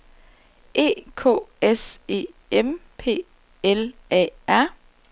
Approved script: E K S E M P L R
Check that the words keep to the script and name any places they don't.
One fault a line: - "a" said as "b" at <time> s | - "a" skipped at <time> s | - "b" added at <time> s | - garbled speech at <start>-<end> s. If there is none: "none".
- "A" added at 4.1 s